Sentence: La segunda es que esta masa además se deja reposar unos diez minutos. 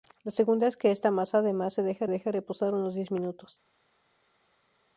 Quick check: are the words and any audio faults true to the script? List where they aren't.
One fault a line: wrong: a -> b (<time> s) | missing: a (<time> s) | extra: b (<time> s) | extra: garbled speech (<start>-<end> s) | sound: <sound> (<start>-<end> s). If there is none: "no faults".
extra: deja (2.1 s)